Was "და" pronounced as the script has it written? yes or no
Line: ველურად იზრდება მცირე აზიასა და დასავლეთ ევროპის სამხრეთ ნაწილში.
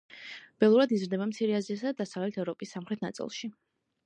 yes